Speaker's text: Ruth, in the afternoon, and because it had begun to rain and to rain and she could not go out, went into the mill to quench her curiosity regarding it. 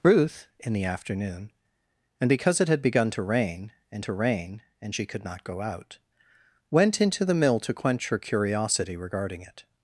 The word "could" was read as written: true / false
true